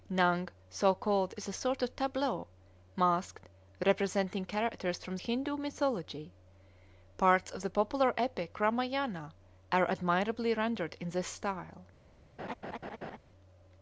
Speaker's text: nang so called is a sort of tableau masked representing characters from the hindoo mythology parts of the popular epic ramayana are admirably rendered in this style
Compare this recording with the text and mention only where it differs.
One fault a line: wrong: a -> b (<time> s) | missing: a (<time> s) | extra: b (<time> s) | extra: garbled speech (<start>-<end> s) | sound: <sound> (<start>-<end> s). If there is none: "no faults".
missing: the (5.2 s)
sound: laugh (12.4-13.2 s)